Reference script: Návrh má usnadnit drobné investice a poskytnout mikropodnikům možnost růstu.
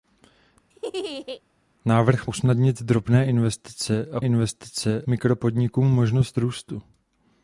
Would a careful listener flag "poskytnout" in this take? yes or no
yes